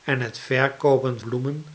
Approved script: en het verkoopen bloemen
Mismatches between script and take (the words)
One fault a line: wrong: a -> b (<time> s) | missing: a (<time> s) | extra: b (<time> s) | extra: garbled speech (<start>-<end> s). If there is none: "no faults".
no faults